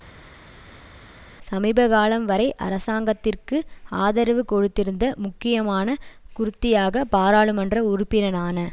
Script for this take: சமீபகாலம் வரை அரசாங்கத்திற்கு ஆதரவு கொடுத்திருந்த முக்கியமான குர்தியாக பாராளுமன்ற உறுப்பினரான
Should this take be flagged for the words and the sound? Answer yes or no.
no